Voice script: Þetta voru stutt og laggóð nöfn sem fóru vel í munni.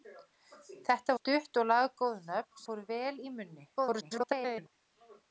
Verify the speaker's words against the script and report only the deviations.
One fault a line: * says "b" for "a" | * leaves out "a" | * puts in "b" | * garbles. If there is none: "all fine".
* leaves out "voru"
* leaves out "sem"
* garbles